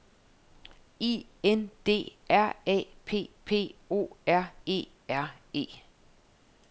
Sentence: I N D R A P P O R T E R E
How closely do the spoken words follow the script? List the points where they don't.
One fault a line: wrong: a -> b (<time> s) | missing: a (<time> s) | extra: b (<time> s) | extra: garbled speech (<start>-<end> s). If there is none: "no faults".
missing: T (4.5 s)